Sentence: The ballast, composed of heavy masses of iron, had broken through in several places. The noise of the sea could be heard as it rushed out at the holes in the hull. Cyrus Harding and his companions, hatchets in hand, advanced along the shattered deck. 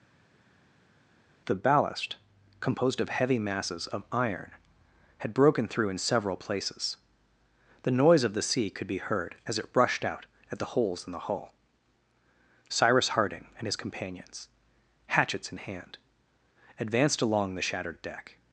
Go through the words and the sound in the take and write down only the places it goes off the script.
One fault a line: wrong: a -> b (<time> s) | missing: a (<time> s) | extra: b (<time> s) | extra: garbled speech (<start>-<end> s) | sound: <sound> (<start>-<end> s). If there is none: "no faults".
no faults